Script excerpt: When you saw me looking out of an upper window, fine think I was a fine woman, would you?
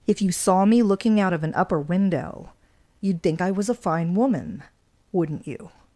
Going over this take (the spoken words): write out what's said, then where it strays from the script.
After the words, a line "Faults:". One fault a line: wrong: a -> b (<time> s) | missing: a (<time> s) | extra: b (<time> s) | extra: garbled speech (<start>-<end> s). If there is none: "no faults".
If you saw me looking out of an upper window, you'd think I was a fine woman, wouldn't you?
Faults:
wrong: When -> If (0.1 s)
wrong: fine -> you'd (3.0 s)
wrong: would -> wouldn't (5.1 s)